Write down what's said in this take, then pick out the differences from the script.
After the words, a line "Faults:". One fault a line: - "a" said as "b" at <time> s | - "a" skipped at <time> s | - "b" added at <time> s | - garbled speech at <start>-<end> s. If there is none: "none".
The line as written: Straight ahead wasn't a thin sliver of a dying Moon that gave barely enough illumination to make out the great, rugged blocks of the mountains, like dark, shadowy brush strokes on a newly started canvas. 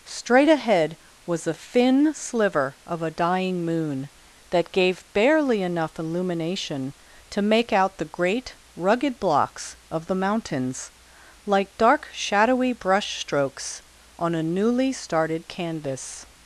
Straight ahead was a thin sliver of a dying Moon that gave barely enough illumination to make out the great, rugged blocks of the mountains, like dark, shadowy brush strokes on a newly started canvas.
Faults:
- "wasn't" said as "was" at 1.3 s